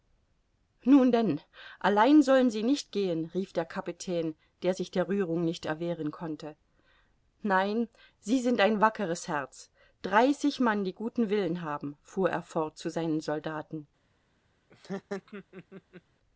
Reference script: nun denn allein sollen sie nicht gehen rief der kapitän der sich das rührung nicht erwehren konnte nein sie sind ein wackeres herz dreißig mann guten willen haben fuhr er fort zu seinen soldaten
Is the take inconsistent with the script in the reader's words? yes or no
yes